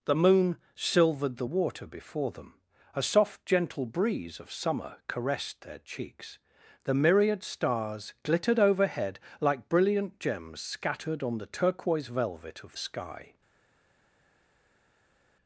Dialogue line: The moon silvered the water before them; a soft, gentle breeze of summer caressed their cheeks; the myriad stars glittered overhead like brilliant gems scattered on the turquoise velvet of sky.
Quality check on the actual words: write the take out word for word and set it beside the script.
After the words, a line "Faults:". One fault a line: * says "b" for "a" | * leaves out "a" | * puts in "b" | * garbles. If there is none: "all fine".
The moon silvered the water before them; a soft, gentle breeze of summer caressed their cheeks; the myriad stars glittered overhead like brilliant gems scattered on the turquoise velvet of sky.
Faults:
all fine